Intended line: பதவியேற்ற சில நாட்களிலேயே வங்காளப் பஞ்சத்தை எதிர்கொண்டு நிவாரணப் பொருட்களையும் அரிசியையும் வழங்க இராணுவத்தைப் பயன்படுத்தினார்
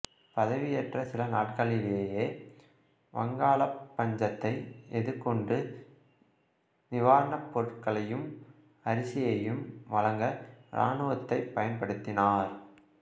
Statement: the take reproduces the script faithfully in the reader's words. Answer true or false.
true